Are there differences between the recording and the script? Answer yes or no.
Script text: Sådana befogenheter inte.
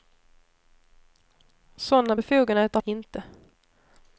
no